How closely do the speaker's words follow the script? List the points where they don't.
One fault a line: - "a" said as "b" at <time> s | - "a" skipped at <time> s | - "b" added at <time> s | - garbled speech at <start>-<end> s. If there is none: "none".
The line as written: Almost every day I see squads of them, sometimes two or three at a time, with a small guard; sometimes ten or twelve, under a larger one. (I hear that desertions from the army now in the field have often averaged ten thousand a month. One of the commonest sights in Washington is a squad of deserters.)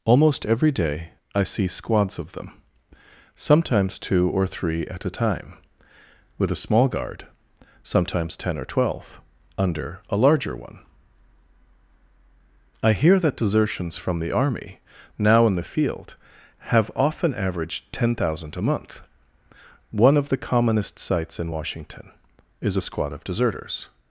none